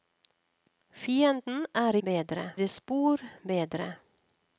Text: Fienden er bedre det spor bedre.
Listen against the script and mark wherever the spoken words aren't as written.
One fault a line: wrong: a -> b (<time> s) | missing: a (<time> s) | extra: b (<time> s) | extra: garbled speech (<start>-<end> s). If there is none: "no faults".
no faults